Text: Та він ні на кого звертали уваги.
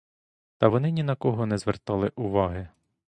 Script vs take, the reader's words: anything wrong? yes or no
yes